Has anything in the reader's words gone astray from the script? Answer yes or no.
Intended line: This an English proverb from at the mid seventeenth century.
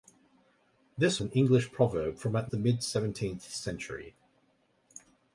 no